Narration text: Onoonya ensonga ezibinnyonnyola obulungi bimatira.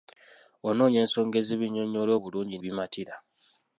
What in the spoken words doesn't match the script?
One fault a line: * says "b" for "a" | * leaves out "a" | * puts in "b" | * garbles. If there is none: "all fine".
all fine